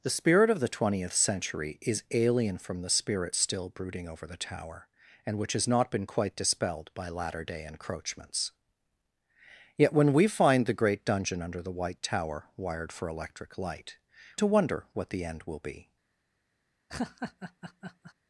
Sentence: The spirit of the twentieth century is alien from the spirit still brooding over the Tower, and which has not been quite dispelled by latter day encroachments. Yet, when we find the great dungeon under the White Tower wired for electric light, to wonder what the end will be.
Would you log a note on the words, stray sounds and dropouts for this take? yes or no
yes